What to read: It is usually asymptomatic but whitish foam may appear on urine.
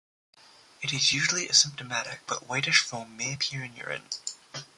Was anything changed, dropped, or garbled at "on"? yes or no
yes